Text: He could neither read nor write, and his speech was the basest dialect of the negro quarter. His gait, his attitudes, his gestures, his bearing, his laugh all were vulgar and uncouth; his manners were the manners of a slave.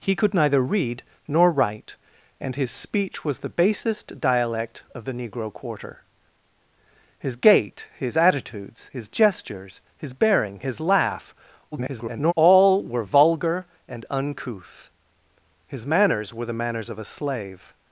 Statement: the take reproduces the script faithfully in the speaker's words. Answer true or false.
false